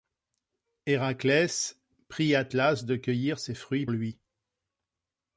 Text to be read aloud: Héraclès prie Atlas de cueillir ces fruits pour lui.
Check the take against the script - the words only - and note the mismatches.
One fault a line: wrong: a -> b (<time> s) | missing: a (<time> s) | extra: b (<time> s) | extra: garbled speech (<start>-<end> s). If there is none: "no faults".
missing: pour (3.9 s)